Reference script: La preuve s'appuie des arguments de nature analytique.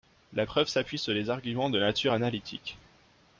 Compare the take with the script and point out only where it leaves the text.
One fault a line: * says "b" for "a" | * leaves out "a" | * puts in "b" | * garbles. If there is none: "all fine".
* puts in "sur"